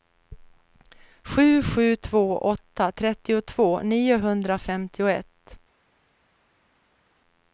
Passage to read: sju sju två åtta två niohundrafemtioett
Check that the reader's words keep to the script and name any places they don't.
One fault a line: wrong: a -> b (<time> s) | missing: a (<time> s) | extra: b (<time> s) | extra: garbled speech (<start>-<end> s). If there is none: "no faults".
wrong: två -> trettiotvå (2.9 s)